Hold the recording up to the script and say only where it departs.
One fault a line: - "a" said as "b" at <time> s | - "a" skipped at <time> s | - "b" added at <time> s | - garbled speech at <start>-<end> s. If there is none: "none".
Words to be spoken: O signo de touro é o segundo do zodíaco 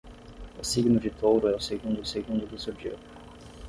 - "segundo" added at 2.0 s